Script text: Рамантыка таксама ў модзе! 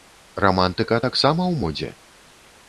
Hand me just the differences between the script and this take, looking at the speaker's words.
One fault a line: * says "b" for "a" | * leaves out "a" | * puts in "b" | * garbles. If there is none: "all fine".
all fine